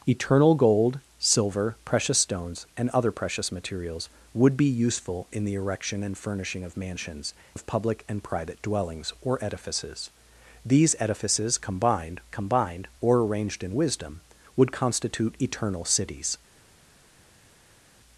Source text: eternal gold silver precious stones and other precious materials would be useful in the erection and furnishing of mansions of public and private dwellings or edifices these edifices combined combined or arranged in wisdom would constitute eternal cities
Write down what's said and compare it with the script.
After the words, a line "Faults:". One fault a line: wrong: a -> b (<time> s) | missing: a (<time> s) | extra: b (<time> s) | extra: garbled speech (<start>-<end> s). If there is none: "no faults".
eternal gold silver precious stones and other precious materials would be useful in the erection and furnishing of mansions of public and private dwellings or edifices these edifices combined combined or arranged in wisdom would constitute eternal cities
Faults:
no faults